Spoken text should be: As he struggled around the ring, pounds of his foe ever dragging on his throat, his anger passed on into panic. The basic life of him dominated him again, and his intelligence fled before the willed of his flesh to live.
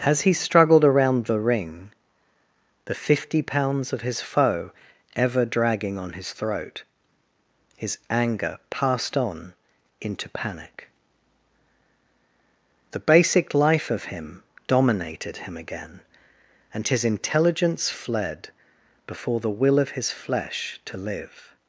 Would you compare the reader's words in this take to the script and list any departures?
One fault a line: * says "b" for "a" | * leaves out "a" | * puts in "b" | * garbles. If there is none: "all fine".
* puts in "the fifty"
* says "will" for "willed"